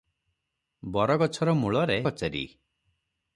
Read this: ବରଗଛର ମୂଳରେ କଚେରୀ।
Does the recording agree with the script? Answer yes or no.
yes